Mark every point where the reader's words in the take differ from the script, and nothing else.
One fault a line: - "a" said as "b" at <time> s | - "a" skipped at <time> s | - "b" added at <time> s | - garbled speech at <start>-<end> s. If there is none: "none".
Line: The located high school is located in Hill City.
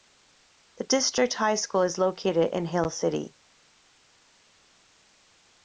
- "located" said as "district" at 0.8 s